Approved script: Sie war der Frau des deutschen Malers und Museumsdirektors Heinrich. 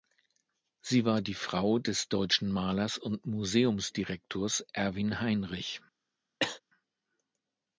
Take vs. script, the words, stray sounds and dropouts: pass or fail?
fail